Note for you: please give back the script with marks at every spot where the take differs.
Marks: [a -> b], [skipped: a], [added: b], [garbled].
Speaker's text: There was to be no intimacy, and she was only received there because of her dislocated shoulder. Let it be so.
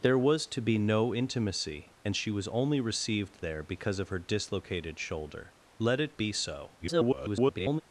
There was to be no intimacy, and she was only received there because of her dislocated shoulder. Let it be so. [garbled]